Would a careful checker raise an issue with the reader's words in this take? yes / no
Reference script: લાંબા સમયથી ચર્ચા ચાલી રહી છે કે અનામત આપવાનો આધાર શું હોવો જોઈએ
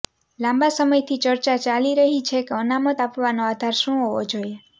no